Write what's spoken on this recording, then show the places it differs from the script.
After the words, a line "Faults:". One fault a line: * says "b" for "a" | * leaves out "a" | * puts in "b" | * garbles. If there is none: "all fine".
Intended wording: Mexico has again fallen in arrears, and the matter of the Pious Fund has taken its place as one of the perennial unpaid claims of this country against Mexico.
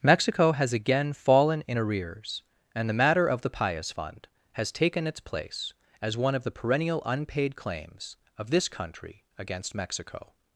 Mexico has again fallen in arrears, and the matter of the Pious Fund has taken its place as one of the perennial unpaid claims of this country against Mexico.
Faults:
all fine